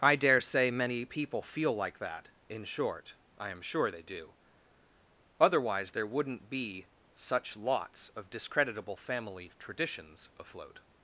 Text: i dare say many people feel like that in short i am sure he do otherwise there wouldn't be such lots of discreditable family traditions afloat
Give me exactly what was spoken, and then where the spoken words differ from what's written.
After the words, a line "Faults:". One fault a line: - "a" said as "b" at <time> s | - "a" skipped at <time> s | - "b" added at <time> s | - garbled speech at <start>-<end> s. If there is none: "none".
i dare say many people feel like that in short i am sure they do otherwise there wouldn't be such lots of discreditable family traditions afloat
Faults:
- "he" said as "they" at 3.9 s